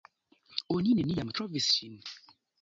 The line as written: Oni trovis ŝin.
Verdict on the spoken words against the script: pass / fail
fail